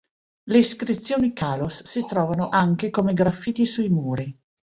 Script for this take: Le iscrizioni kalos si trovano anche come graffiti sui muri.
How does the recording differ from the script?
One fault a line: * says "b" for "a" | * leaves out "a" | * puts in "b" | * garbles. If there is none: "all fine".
all fine